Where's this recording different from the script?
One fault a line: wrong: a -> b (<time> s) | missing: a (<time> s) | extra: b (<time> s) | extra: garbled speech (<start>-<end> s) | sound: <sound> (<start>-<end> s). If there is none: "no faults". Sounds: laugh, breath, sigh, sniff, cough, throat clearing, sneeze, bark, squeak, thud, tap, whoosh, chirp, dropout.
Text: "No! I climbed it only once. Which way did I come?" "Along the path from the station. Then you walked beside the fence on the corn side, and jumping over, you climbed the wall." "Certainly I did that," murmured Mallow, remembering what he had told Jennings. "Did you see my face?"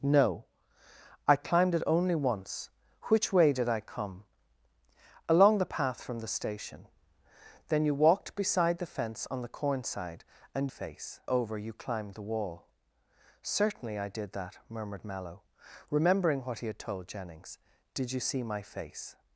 wrong: jumping -> face (10.7 s)